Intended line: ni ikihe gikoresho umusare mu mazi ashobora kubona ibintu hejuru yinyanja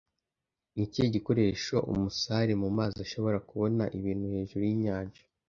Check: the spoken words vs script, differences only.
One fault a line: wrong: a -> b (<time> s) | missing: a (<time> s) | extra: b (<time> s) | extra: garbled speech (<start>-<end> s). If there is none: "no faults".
no faults